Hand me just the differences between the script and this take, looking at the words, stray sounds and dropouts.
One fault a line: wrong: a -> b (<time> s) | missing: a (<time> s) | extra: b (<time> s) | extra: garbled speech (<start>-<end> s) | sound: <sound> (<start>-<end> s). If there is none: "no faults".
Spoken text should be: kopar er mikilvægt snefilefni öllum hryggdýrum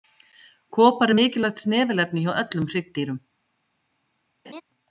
extra: hjá (2.3 s)
sound: laugh (4.4-4.6 s)